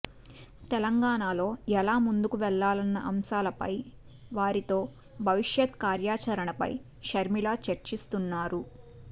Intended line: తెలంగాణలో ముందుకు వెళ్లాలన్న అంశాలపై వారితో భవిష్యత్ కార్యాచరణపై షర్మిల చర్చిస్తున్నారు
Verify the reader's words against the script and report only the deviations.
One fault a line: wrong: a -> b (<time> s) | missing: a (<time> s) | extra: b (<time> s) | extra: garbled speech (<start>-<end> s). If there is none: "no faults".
extra: ఎలా (1.7 s)